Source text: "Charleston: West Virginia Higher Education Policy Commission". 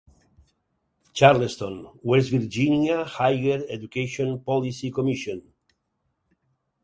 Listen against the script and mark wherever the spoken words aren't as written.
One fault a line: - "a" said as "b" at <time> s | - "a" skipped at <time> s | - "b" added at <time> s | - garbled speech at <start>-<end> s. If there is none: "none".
none